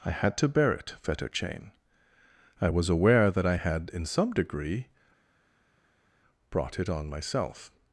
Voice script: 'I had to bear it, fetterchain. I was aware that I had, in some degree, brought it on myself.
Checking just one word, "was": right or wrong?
right